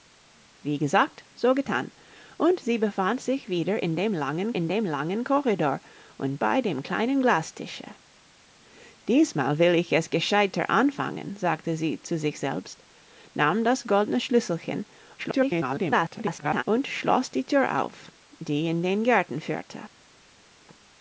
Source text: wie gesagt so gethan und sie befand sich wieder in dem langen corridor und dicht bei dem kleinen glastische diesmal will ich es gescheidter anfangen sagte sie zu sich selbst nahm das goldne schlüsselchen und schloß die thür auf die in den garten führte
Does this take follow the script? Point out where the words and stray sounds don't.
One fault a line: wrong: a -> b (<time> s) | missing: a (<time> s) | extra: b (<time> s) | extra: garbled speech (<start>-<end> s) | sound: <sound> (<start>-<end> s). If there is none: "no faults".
extra: in dem langen (4.6 s)
missing: dicht (6.4 s)
extra: garbled speech (15.2-16.6 s)